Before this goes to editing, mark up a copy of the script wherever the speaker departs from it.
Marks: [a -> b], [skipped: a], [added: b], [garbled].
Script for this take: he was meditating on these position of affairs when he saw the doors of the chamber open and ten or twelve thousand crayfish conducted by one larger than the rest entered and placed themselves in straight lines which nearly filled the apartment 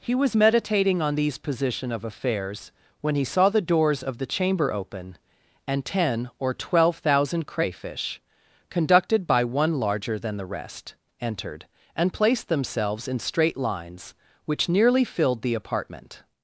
he was meditating on these position of affairs when he saw the doors of the chamber open and ten or twelve thousand crayfish conducted by one larger than the rest entered and placed themselves in straight lines which nearly filled the apartment